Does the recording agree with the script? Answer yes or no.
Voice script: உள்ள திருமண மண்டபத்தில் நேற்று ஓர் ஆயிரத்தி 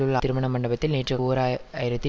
yes